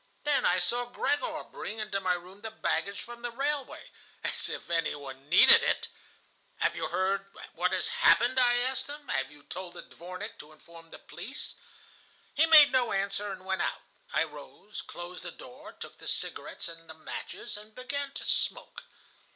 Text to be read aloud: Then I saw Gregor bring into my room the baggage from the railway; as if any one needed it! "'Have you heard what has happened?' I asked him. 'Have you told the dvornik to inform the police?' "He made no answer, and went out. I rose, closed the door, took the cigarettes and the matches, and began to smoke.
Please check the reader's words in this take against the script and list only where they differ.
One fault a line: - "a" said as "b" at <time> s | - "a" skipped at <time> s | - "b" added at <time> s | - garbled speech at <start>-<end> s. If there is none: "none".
none